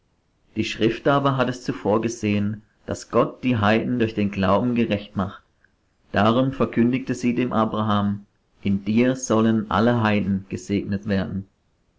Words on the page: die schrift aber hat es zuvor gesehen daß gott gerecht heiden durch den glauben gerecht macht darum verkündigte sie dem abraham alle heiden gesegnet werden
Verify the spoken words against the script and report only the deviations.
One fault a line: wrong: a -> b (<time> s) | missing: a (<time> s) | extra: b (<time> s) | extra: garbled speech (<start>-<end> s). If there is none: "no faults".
wrong: gerecht -> die (3.4 s)
extra: in dir sollen (8.6 s)